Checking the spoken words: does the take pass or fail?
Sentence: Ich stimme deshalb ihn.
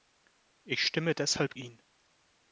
pass